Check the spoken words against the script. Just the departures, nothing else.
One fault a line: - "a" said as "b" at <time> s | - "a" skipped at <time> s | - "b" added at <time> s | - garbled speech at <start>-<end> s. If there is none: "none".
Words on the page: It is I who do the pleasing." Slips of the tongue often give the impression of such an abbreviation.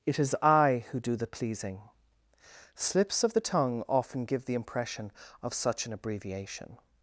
none